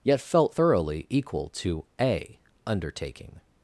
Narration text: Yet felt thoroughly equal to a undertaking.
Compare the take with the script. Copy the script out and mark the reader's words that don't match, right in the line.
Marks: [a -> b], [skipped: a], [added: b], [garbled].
Yet felt thoroughly equal to a undertaking.